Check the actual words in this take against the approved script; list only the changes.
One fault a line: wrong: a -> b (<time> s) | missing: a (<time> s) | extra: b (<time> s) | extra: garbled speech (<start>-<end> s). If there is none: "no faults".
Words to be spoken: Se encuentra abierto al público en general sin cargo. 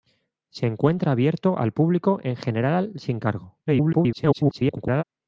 extra: garbled speech (3.7-5.0 s)